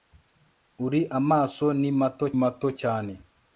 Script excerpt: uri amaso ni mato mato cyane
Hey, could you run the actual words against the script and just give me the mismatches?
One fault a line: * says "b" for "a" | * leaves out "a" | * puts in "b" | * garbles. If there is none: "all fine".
all fine